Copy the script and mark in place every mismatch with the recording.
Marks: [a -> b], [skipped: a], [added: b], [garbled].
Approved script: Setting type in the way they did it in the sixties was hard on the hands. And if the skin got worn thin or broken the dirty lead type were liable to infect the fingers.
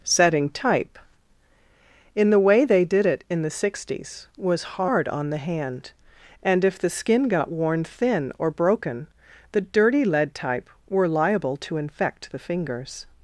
Setting type in the way they did it in the sixties was hard on the [hands. -> hand] And if the skin got worn thin or broken the dirty lead type were liable to infect the fingers.